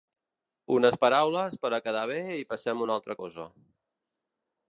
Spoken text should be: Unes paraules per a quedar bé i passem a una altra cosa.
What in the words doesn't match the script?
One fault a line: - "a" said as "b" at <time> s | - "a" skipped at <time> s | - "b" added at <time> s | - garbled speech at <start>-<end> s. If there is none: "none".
none